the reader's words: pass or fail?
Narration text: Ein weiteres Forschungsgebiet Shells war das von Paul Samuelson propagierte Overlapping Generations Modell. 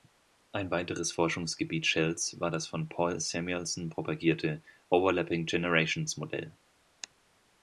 pass